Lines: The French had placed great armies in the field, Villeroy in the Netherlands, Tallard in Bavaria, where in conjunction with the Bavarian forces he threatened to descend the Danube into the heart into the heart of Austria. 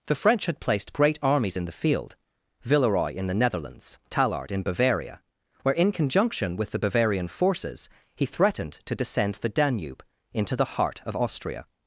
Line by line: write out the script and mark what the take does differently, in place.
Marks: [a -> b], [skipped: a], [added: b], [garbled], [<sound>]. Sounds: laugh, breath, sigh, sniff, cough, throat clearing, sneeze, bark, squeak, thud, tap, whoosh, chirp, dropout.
The French had placed great armies in the field, Villeroy in the Netherlands, Tallard in Bavaria, where in conjunction with the Bavarian forces he threatened to descend the Danube into the heart [skipped: into the heart] of Austria.